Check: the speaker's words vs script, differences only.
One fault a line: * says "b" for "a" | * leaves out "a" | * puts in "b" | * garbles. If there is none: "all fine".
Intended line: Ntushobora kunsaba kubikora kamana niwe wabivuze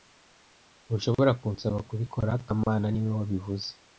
all fine